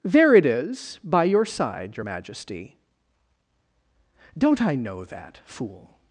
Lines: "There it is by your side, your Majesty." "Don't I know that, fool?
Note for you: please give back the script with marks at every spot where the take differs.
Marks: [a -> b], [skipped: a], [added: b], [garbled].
"There it is by your side, your Majesty." "Don't I know that, fool?